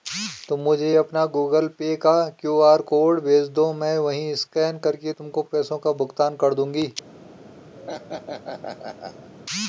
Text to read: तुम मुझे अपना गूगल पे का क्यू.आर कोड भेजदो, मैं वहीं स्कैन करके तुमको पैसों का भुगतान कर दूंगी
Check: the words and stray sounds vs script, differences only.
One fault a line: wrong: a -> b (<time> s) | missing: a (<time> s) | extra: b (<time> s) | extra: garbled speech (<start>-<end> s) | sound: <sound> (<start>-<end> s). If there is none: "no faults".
sound: laugh (7.7-9.3 s)